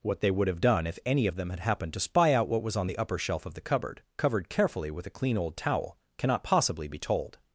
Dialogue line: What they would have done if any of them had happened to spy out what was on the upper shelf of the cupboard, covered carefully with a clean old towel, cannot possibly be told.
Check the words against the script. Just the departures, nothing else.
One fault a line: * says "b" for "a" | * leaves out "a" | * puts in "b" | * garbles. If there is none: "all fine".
all fine